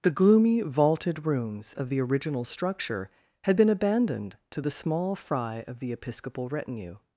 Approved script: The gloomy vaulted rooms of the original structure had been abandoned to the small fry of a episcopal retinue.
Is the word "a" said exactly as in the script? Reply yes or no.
no